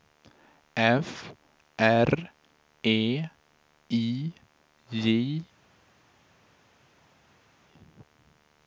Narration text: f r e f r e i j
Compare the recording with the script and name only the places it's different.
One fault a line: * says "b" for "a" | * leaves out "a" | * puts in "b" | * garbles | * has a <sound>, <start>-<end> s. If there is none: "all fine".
* leaves out "f r e"